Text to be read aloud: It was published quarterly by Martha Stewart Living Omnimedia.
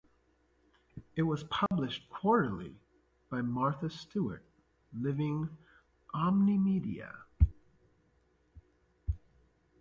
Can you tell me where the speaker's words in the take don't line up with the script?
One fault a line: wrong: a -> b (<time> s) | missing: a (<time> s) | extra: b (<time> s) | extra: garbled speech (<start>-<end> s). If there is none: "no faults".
no faults